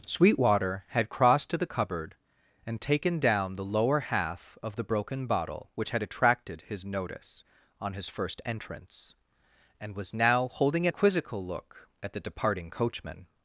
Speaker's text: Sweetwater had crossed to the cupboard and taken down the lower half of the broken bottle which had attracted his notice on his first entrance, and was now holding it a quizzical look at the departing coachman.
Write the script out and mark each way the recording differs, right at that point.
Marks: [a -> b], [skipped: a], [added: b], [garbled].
Sweetwater had crossed to the cupboard and taken down the lower half of the broken bottle which had attracted his notice on his first entrance, and was now holding it a quizzical look at the departing coachman.